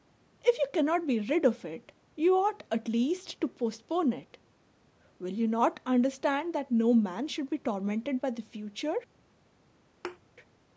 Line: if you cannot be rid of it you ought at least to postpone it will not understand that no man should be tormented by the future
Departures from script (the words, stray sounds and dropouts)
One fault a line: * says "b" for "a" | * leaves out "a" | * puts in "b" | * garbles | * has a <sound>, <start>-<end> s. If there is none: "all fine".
* puts in "you"
* has a thud, 10.0-10.2 s